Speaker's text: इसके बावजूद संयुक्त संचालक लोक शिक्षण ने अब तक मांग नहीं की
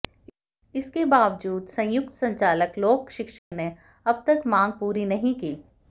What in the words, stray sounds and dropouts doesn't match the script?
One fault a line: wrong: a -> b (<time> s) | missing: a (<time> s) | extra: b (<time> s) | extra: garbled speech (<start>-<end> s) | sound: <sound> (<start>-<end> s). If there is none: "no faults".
sound: dropout (3.4-3.5 s)
extra: पूरी (4.7 s)